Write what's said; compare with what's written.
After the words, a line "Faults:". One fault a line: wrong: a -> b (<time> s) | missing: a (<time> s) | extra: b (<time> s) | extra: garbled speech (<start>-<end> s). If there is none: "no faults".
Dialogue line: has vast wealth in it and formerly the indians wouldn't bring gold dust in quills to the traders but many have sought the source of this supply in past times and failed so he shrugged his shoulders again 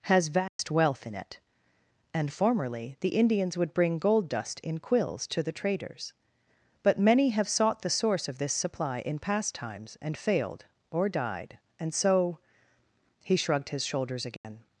has vast wealth in it and formerly the indians would bring gold dust in quills to the traders but many have sought the source of this supply in past times and failed or died and so he shrugged his shoulders again
Faults:
wrong: wouldn't -> would (3.5 s)
extra: or died and (10.9 s)